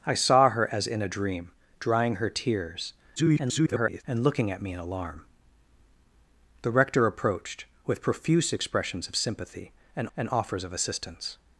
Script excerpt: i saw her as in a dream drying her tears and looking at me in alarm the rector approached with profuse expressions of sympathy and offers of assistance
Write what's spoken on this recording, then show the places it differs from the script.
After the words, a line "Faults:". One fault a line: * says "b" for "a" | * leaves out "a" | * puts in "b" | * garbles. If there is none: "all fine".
i saw her as in a dream drying her tears [garbled] and looking at me in alarm the rector approached with profuse expressions of sympathy and and offers of assistance
Faults:
* garbles
* puts in "and"